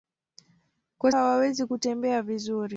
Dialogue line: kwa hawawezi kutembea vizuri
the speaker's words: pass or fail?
pass